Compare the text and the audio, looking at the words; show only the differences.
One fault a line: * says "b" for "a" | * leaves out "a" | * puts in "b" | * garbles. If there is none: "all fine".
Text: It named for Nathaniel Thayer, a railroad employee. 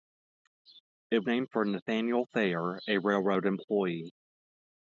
all fine